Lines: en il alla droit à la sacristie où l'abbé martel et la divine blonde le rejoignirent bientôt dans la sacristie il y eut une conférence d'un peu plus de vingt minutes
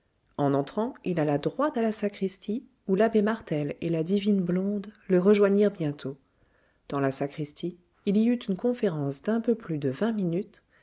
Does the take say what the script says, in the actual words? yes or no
no